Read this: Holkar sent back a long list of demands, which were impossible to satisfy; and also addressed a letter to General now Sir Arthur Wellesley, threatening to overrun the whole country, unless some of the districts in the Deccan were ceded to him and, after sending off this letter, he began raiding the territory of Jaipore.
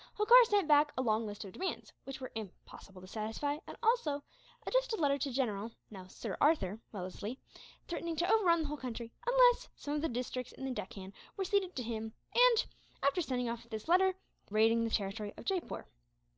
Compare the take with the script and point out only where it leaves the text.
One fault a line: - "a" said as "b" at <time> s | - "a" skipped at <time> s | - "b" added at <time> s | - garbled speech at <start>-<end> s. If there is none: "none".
- "he began" skipped at 14.2 s